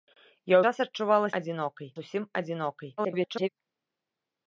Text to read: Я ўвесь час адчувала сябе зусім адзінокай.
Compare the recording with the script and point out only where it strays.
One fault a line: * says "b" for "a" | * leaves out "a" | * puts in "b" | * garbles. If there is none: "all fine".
* leaves out "ўвесь"
* says "адзінокай" for "сябе"
* garbles